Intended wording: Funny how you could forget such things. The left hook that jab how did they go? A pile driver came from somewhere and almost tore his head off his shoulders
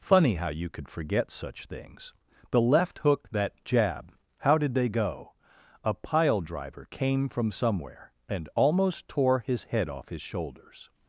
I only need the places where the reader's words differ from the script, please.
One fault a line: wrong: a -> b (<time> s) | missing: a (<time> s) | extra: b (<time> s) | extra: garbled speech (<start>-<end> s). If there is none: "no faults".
no faults